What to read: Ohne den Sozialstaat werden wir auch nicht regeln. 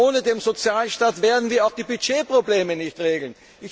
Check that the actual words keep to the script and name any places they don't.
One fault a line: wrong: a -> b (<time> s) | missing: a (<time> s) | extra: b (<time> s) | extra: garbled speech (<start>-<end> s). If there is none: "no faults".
extra: die Budgetprobleme (1.7 s)